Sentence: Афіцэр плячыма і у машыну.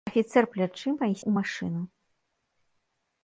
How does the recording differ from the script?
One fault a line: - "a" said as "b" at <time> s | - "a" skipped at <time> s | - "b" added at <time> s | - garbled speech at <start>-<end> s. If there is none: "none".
none